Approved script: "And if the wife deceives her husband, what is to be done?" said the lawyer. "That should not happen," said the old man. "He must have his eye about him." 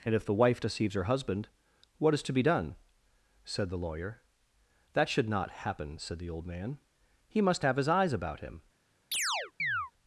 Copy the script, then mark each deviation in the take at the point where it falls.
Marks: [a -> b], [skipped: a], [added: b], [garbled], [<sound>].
"And if the wife deceives her husband, what is to be done?" said the lawyer. "That should not happen," said the old man. "He must have his [eye -> eyes] about him." [chirp]